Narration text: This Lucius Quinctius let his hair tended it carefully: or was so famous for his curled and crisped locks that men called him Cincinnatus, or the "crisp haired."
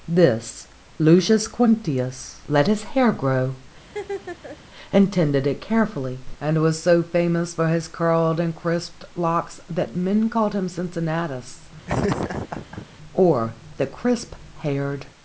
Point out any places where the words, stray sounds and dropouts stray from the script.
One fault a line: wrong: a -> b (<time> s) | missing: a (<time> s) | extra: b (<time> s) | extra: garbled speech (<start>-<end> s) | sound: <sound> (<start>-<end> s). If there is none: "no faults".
extra: grow and (3.1 s)
sound: laugh (3.8-4.6 s)
wrong: or -> and (6.4 s)
sound: laugh (11.9-12.9 s)